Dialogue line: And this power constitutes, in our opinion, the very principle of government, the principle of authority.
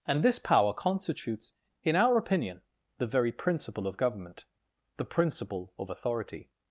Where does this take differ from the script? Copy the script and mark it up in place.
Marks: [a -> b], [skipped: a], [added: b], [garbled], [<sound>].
And this power constitutes, in our opinion, the very principle of government, the principle of authority.